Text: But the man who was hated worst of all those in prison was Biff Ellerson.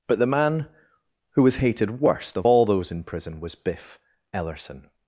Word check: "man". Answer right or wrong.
right